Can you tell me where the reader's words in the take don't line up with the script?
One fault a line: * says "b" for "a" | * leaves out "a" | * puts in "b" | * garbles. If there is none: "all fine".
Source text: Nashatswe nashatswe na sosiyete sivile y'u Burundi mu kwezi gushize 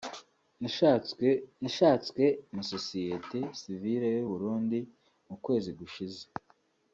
all fine